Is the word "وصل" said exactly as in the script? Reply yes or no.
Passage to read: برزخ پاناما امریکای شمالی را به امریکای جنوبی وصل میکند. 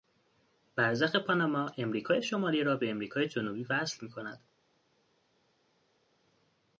yes